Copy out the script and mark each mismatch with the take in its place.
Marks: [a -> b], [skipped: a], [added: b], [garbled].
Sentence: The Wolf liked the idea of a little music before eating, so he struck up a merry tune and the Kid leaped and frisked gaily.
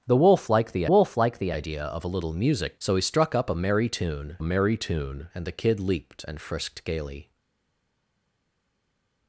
The Wolf liked the [added: Wolf liked the] idea of a little music [skipped: before eating,] so he struck up a merry tune [added: merry tune] and the Kid leaped and frisked gaily.